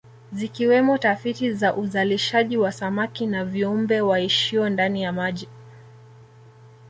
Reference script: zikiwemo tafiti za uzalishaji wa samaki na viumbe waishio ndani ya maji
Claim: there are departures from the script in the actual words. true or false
false